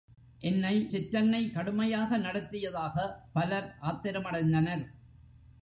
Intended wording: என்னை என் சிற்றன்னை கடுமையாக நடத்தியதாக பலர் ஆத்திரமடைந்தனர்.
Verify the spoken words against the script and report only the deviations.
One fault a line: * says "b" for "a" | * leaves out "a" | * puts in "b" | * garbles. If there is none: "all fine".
* leaves out "என்"